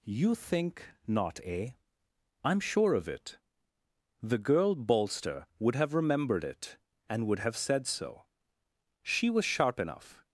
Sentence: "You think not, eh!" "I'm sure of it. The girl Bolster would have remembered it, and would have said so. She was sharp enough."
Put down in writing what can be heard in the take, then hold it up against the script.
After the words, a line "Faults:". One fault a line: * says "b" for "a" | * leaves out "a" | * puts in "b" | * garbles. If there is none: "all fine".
"You think not, eh!" "I'm sure of it. The girl Bolster would have remembered it, and would have said so. She was sharp enough."
Faults:
all fine